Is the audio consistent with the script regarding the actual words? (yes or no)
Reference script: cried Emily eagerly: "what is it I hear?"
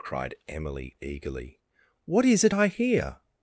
yes